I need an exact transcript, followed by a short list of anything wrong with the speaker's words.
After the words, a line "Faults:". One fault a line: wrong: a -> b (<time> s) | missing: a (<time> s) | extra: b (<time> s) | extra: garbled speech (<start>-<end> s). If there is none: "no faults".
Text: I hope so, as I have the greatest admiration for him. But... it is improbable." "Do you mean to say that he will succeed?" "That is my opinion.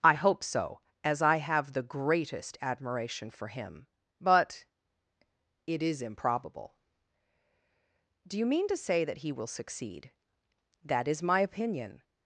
I hope so, as I have the greatest admiration for him. But... it is improbable." "Do you mean to say that he will succeed?" "That is my opinion.
Faults:
no faults